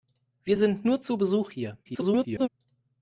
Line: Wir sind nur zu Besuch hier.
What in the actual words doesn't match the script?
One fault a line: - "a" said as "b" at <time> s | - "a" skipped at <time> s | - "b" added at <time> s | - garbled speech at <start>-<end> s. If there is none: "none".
- garbled speech at 1.8-2.5 s